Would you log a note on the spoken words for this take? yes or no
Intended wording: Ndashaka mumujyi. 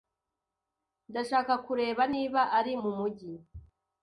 yes